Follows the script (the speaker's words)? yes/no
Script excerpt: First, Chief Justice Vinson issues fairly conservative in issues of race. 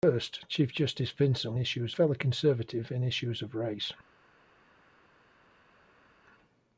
yes